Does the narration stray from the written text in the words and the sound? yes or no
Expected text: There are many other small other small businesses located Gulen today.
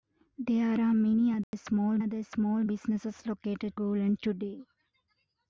yes